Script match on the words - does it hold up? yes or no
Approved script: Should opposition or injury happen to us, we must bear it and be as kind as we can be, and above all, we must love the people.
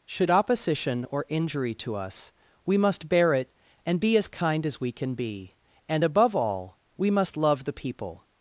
no